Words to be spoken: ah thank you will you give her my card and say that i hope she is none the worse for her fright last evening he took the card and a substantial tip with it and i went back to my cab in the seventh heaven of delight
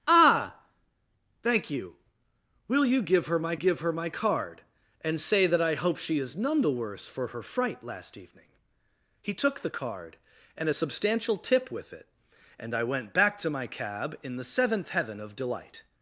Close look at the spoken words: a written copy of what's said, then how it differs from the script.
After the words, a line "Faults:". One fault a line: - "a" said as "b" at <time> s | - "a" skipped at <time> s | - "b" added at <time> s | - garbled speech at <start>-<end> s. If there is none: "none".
ah thank you will you give her my give her my card and say that i hope she is none the worse for her fright last evening he took the card and a substantial tip with it and i went back to my cab in the seventh heaven of delight
Faults:
- "give her my" added at 3.5 s